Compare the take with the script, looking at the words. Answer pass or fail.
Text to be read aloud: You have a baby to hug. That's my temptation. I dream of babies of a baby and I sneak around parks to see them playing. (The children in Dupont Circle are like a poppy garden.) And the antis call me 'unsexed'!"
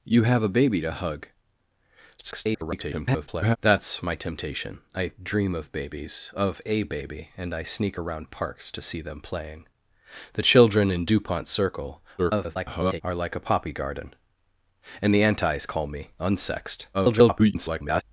fail